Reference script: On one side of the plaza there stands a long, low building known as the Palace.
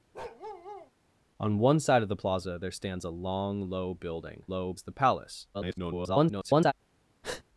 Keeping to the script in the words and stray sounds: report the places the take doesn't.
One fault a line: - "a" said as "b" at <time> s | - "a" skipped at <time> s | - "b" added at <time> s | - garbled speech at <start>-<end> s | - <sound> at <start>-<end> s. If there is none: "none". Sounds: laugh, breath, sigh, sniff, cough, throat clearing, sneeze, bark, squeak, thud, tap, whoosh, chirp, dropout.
- bark at 0.1-0.9 s
- "known" said as "low" at 4.5 s
- garbled speech at 5.5-6.7 s
- breath at 7.2-7.4 s